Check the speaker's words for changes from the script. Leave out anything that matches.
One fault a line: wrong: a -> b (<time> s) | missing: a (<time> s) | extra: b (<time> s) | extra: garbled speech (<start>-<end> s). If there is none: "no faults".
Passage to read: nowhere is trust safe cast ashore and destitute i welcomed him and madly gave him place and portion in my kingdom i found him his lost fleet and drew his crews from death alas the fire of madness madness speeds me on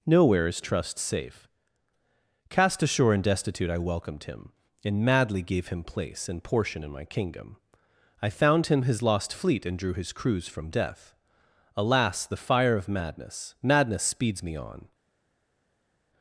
no faults